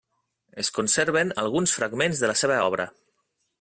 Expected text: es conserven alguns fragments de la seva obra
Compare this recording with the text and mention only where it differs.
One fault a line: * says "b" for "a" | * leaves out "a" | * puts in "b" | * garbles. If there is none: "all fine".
all fine